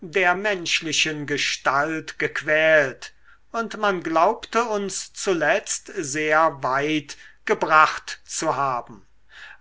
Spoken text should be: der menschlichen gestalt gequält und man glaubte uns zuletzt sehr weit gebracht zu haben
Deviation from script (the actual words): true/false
false